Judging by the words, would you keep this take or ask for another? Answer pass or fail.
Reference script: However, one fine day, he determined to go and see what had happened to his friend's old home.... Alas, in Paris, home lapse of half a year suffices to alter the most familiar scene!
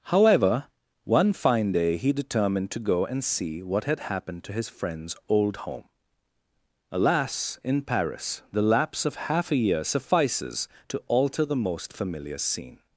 fail